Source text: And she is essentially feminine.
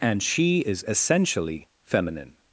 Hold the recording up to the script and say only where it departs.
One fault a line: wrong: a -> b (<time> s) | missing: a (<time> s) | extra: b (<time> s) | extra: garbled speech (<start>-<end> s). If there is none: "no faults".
no faults